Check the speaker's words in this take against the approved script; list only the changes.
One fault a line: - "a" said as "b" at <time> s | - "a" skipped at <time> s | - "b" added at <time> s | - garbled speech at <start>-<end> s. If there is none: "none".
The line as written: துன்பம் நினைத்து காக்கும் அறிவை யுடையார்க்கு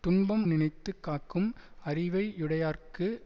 none